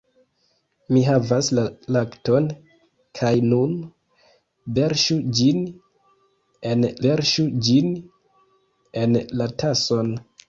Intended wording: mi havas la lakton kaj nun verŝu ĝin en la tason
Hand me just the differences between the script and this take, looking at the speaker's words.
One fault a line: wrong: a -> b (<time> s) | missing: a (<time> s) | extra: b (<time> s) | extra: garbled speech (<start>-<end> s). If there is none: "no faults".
extra: verŝu ĝin en (7.0 s)